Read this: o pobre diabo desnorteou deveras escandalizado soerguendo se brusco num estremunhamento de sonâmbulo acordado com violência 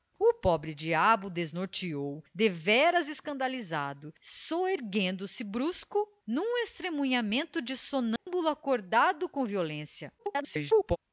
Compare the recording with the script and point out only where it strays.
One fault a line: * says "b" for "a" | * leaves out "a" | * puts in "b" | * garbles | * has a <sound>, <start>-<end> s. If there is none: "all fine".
* has a dropout, 8.2-8.3 s
* garbles